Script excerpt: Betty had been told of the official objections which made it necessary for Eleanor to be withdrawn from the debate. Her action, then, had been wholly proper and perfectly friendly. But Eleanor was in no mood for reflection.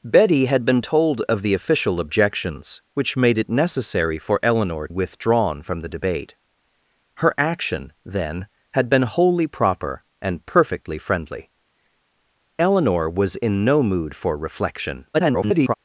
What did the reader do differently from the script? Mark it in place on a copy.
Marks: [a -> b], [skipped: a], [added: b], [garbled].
Betty had been told of the official objections which made it necessary for Eleanor [skipped: to be] withdrawn from the debate. Her action, then, had been wholly proper and perfectly friendly. [skipped: But] Eleanor was in no mood for reflection. [garbled]